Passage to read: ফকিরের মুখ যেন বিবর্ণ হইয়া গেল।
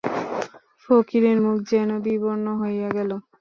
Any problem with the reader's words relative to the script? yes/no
no